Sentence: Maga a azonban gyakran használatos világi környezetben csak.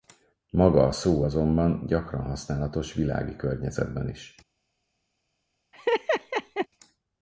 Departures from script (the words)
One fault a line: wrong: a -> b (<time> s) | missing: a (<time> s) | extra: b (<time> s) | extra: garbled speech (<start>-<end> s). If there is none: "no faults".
extra: szó (0.9 s)
wrong: csak -> is (4.1 s)